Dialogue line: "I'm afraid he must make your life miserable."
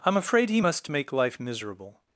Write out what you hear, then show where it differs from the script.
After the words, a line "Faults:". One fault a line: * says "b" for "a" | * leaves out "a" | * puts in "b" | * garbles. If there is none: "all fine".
"I'm afraid he must make life miserable."
Faults:
* leaves out "your"